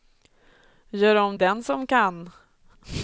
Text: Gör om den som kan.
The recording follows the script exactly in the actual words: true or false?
true